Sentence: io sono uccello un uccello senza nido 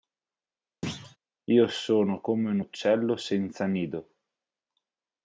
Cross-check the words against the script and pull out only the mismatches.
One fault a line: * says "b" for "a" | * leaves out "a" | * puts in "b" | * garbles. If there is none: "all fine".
* says "come" for "uccello"